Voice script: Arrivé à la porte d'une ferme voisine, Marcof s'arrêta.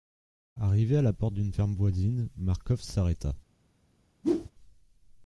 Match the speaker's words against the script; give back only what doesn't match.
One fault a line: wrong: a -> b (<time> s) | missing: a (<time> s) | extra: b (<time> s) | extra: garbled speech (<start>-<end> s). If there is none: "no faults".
no faults